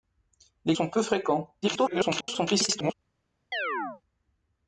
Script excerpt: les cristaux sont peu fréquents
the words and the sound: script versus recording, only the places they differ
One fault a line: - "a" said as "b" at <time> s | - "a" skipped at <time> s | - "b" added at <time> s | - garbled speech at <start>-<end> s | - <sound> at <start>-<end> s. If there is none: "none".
- "cristaux" skipped at 0.7 s
- garbled speech at 1.6-2.9 s
- chirp at 3.5-4.0 s